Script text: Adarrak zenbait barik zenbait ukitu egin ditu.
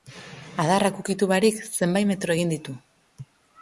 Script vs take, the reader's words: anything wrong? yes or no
yes